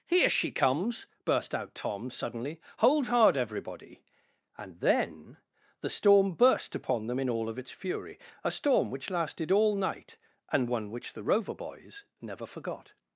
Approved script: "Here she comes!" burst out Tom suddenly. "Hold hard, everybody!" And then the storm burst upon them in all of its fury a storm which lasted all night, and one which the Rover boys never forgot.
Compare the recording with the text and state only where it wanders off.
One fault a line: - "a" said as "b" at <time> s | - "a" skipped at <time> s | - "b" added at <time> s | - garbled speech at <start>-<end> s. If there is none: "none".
none